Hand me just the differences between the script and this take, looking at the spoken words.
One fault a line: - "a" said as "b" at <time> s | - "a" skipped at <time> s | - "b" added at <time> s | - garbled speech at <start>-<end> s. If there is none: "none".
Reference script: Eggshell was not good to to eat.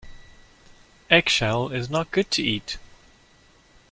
- "was" said as "is" at 1.7 s
- "to" skipped at 2.4 s